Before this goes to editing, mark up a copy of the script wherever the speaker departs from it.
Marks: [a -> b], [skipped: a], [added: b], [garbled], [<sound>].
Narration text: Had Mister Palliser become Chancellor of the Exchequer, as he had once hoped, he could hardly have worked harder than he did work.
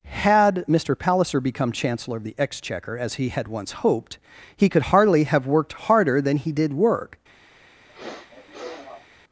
Had Mister Palliser become Chancellor of the Exchequer, as he had once hoped, he could hardly have worked harder than he did work. [sniff]